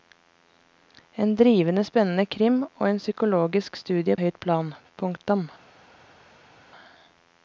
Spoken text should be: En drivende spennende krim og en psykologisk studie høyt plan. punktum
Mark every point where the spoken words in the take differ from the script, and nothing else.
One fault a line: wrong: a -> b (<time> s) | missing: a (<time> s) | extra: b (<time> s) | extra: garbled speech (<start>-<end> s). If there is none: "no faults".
no faults